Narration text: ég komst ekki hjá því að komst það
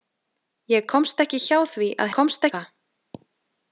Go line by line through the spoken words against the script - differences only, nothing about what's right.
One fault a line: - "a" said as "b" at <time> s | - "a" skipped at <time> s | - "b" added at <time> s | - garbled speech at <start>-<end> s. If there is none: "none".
none